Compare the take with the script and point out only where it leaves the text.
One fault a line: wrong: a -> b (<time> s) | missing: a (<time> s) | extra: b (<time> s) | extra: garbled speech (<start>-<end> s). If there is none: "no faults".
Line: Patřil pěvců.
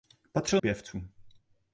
no faults